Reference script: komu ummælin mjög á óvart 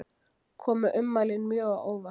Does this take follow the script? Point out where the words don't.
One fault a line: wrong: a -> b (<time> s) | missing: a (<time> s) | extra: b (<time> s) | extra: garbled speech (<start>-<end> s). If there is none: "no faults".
no faults